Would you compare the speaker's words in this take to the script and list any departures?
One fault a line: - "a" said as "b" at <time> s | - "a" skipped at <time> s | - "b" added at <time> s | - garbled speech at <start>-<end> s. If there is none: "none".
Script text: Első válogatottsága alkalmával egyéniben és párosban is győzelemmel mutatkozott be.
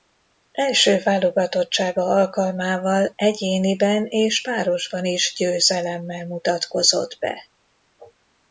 none